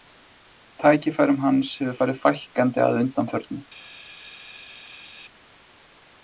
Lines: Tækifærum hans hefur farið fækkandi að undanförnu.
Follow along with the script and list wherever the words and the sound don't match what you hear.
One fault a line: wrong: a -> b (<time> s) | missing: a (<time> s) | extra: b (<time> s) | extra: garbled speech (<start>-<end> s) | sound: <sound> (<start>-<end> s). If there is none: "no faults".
no faults